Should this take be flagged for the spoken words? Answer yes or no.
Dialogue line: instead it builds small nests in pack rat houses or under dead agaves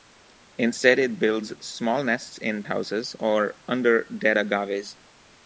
yes